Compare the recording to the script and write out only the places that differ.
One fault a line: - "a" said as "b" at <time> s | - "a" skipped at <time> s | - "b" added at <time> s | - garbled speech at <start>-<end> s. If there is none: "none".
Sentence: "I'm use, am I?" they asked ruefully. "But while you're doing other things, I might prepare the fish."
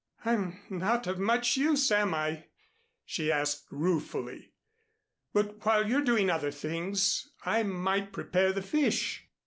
- "not of much" added at 0.7 s
- "they" said as "she" at 3.0 s